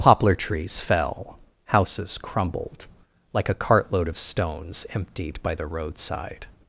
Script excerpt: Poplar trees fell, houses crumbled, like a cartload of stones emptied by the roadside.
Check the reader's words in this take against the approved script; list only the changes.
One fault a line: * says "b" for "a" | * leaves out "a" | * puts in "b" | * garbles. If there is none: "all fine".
all fine